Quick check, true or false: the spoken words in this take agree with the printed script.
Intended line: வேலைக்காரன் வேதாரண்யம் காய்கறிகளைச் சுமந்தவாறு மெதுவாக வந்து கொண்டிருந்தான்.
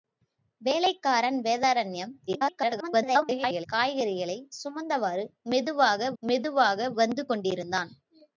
false